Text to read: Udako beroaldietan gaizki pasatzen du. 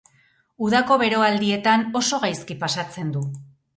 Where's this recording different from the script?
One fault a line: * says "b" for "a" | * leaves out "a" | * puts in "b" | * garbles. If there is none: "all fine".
* puts in "oso"